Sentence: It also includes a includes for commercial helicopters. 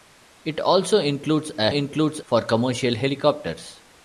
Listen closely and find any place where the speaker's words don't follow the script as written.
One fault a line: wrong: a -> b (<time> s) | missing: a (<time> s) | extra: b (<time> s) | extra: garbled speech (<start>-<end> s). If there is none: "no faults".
no faults